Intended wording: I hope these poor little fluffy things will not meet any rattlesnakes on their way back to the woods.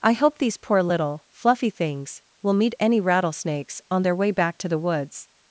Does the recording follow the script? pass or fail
fail